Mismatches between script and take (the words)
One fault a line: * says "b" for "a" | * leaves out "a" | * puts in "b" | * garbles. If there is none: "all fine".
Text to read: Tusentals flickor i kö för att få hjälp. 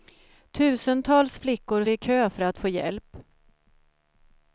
all fine